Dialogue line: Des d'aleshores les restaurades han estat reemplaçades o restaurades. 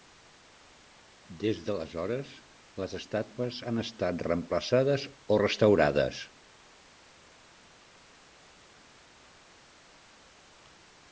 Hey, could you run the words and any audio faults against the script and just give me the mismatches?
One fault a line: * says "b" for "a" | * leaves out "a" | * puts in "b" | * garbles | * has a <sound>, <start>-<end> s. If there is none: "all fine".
* says "estàtues" for "restaurades"